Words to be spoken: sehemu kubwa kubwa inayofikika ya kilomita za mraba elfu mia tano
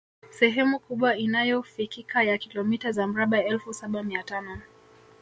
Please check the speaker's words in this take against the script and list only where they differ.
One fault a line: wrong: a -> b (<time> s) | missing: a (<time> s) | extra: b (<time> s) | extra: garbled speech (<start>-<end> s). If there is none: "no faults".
missing: kubwa (1.2 s)
extra: saba (3.7 s)